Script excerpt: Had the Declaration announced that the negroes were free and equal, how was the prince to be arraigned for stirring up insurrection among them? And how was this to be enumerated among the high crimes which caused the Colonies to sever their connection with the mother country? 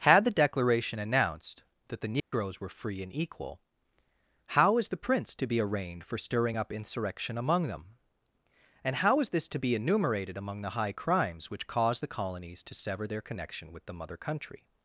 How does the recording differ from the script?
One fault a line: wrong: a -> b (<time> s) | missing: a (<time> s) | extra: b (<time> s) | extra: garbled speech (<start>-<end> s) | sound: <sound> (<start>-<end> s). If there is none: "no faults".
sound: dropout (2.2-2.3 s)
wrong: was -> is (4.8 s)
wrong: was -> is (9.2 s)